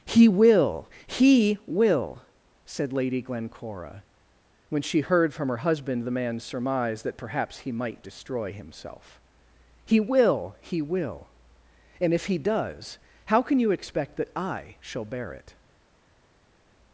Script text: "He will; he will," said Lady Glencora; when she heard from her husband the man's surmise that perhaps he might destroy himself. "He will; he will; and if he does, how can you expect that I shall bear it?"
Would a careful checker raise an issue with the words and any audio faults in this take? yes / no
no